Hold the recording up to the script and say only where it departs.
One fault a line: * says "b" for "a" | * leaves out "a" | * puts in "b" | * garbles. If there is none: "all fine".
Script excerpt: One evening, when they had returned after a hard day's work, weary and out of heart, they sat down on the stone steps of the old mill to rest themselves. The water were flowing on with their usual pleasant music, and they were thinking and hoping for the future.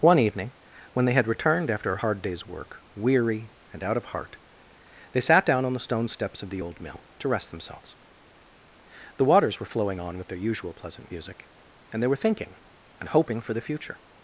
* says "waters" for "water"